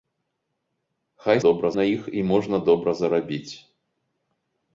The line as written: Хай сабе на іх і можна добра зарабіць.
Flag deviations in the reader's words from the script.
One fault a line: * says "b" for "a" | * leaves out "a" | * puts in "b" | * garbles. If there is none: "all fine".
* says "добра" for "сабе"